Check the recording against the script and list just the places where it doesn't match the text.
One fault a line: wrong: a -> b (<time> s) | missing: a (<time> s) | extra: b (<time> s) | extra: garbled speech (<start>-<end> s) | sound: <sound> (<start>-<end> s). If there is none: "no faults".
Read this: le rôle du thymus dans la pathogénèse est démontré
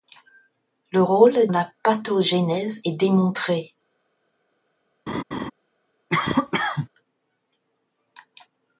missing: du thymus dans (1.5 s)
sound: laugh (5.1-5.5 s)
sound: cough (6.1-6.9 s)